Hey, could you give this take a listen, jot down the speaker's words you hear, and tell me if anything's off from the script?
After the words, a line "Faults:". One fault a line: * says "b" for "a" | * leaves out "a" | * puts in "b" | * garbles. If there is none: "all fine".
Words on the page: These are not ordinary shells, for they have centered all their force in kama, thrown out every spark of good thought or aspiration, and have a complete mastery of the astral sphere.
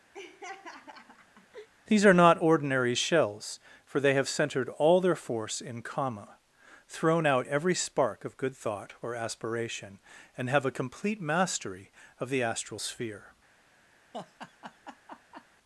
These are not ordinary shells, for they have centered all their force in kama, thrown out every spark of good thought or aspiration, and have a complete mastery of the astral sphere.
Faults:
all fine